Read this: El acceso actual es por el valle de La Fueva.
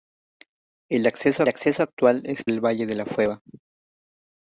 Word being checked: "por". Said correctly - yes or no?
no